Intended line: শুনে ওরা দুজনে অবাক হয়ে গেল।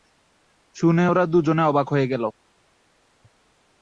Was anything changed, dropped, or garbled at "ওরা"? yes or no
no